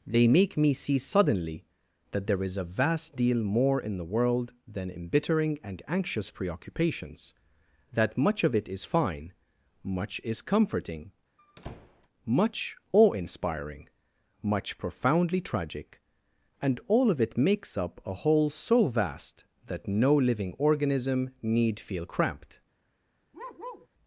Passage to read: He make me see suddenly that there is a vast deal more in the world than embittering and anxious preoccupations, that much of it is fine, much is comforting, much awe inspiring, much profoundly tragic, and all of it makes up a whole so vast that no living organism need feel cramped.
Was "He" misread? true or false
true